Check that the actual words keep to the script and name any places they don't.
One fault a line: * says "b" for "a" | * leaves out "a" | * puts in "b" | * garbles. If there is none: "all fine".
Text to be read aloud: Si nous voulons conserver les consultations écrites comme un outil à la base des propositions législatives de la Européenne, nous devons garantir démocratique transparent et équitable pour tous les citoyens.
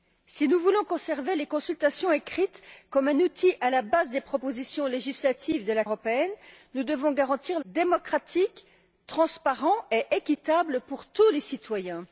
all fine